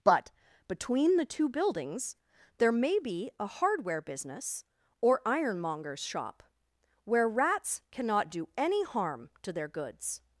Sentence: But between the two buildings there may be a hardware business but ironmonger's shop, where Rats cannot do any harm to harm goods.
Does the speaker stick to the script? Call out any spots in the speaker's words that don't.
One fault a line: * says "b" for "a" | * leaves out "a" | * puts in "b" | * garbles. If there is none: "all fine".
* says "or" for "but"
* says "their" for "harm"